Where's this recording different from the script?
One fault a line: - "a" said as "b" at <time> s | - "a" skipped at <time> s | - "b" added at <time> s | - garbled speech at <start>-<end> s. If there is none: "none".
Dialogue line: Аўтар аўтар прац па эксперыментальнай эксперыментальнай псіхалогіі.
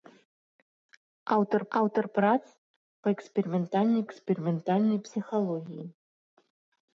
none